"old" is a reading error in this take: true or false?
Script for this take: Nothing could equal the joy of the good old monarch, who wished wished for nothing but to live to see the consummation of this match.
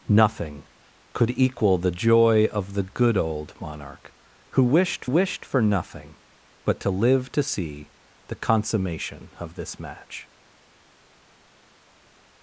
false